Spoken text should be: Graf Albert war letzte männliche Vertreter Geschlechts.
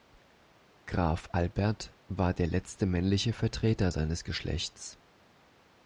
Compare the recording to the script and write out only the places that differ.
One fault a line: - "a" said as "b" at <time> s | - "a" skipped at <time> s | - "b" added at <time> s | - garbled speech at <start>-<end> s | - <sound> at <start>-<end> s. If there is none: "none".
- "der" added at 2.3 s
- "seines" added at 3.9 s